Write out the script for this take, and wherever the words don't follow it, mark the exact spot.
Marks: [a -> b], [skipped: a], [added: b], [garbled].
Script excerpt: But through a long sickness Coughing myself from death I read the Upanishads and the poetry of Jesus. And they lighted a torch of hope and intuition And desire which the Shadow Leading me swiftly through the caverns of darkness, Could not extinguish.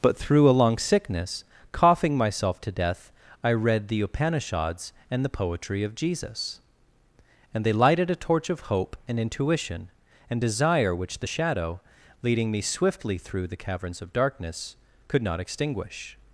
But through a long sickness Coughing myself [from -> to] death I read the Upanishads and the poetry of Jesus. And they lighted a torch of hope and intuition And desire which the Shadow Leading me swiftly through the caverns of darkness, Could not extinguish.